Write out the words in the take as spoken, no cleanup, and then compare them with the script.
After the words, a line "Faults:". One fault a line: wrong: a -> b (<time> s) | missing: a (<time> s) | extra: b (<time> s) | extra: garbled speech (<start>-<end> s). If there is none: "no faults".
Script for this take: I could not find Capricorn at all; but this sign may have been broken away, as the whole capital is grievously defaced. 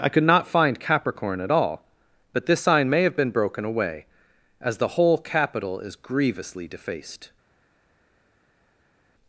I could not find Capricorn at all; but this sign may have been broken away, as the whole capital is grievously defaced.
Faults:
no faults